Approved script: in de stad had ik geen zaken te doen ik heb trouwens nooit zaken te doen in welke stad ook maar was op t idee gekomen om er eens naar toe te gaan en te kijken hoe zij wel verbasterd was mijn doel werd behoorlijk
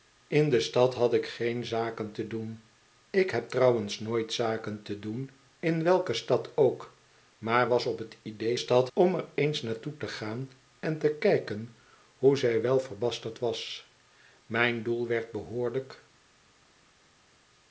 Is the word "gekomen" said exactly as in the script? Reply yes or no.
no